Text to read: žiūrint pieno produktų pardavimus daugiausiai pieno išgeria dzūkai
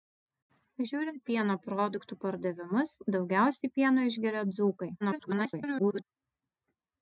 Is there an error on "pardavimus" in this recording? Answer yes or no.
no